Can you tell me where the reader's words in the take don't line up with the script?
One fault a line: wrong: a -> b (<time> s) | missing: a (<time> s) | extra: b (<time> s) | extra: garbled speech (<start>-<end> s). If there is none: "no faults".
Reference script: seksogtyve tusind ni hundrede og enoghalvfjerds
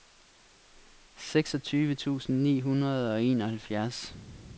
no faults